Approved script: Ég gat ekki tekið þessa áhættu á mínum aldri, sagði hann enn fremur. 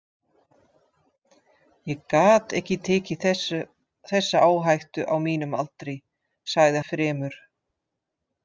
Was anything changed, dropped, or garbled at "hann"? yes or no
yes